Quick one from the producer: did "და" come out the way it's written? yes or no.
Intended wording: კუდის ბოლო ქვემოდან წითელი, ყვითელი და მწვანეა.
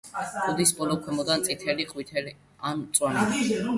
no